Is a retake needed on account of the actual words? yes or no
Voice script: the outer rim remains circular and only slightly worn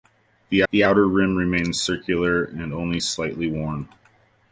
yes